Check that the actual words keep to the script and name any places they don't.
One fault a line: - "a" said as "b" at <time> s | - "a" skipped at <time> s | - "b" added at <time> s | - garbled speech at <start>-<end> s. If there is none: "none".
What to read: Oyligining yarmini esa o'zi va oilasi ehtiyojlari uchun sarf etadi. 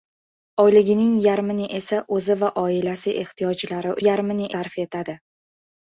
- "uchun" said as "yarmini" at 4.1 s